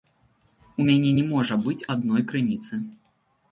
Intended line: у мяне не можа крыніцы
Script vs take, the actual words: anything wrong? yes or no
yes